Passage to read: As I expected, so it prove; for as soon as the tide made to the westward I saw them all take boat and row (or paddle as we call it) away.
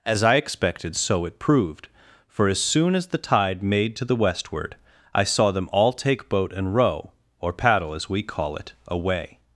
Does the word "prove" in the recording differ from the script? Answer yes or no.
yes